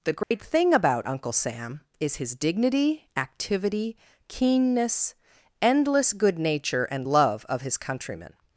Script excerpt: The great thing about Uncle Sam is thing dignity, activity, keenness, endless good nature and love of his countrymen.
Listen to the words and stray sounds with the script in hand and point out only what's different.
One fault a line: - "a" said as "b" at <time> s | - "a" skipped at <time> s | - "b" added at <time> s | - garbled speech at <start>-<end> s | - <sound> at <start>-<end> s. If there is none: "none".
- dropout at 0.2-0.3 s
- "thing" said as "his" at 2.2 s